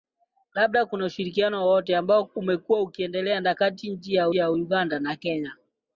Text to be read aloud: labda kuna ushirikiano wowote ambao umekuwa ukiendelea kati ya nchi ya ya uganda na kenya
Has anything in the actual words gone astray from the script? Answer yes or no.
no